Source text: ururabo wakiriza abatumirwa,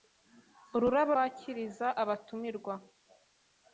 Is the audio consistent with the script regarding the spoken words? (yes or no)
yes